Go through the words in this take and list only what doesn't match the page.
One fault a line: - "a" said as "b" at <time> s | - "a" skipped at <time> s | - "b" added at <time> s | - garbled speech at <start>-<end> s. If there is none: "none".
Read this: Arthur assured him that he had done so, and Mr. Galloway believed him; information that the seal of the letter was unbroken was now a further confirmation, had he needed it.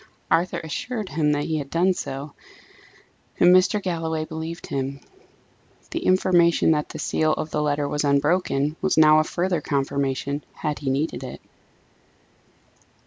- "the" added at 5.9 s